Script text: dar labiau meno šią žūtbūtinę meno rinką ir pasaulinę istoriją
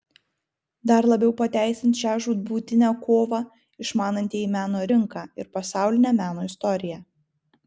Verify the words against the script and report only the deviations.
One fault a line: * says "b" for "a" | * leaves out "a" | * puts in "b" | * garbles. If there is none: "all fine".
* says "pateisins" for "meno"
* puts in "kovą išmanantieji"
* puts in "meno"